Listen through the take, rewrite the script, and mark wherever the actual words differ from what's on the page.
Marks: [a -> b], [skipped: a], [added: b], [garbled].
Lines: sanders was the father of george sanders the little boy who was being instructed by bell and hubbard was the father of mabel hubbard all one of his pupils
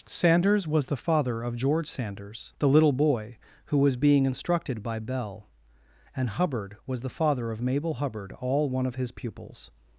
sanders was the father of george sanders the little boy who was being instructed by bell and hubbard was the father of mabel hubbard all one of his pupils